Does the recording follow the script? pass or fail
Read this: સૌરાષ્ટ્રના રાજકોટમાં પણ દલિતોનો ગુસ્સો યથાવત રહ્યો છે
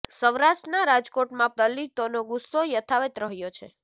fail